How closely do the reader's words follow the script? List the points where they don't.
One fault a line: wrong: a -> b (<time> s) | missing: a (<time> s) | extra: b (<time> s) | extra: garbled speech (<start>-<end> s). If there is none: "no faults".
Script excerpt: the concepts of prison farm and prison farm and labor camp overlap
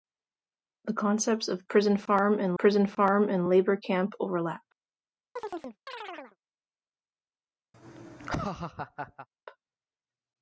no faults